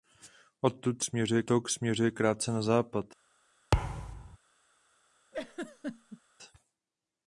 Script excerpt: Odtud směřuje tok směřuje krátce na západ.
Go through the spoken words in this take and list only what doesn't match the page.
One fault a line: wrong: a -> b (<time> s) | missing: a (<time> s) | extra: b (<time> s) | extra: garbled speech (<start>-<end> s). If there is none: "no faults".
no faults